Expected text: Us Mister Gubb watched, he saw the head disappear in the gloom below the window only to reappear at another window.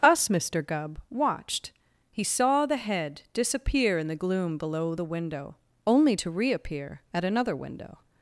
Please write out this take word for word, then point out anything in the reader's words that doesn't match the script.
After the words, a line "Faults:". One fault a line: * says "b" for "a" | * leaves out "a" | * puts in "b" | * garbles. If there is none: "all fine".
Us Mister Gubb watched, he saw the head disappear in the gloom below the window only to reappear at another window.
Faults:
all fine